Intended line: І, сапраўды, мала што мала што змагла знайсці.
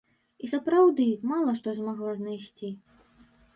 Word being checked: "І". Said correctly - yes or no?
yes